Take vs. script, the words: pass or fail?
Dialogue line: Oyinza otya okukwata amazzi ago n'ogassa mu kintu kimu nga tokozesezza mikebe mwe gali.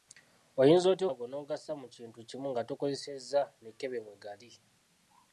fail